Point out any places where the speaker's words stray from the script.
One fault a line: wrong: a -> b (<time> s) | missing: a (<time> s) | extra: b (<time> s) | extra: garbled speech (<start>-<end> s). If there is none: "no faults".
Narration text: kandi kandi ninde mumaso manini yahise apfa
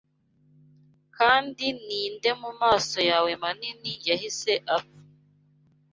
missing: kandi (1.6 s)
extra: yawe (3.1 s)